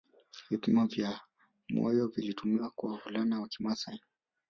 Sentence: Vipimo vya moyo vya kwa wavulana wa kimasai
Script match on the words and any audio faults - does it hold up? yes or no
no